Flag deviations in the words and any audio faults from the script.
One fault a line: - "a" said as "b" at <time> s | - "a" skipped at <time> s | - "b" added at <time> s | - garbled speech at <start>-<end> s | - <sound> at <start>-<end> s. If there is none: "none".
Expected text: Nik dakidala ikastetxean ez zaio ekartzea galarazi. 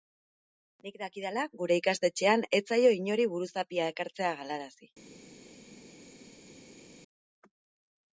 - "gure" added at 1.6 s
- "inori buruzapia" added at 3.0 s